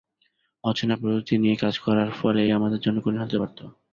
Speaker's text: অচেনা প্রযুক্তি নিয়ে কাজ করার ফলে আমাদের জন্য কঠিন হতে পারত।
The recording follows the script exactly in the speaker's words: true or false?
true